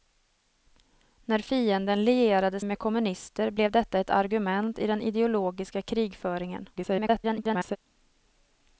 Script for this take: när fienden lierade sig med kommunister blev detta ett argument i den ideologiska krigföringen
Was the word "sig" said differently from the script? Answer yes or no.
yes